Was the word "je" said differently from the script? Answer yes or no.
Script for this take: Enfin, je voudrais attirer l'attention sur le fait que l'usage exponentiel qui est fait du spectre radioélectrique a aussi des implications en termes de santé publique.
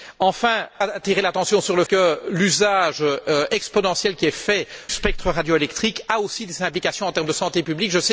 yes